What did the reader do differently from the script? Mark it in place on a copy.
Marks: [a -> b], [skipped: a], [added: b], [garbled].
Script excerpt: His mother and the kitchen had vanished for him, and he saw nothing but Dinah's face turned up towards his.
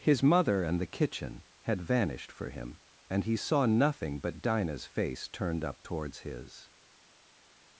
His mother and the kitchen had vanished for him, and he saw nothing but Dinah's face turned up towards his.